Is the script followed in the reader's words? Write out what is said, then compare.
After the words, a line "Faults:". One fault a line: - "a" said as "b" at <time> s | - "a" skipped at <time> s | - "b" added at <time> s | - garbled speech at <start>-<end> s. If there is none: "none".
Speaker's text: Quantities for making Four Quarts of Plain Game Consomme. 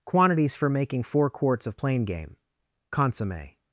Quantities for making Four Quarts of Plain Game Consomme.
Faults:
none